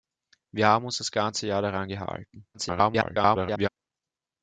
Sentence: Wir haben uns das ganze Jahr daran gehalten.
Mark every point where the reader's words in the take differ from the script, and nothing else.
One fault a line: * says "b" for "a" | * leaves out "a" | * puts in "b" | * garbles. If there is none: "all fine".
* garbles